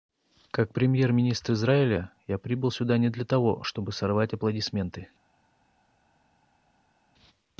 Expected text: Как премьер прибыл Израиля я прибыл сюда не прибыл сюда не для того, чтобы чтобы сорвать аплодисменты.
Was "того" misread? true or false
false